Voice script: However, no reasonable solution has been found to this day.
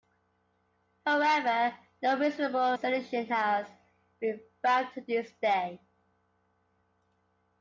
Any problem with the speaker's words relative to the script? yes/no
no